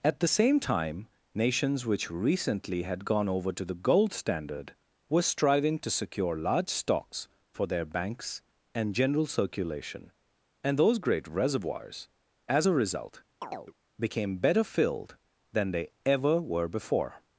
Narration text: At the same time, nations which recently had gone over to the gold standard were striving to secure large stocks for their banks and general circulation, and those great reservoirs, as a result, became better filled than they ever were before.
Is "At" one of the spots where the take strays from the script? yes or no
no